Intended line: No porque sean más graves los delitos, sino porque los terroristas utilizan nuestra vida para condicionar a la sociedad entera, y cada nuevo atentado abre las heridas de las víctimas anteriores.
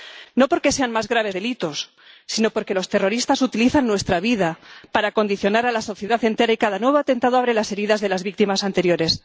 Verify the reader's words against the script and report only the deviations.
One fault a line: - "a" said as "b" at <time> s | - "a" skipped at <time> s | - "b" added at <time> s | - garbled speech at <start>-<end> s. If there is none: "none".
- "los" skipped at 1.4 s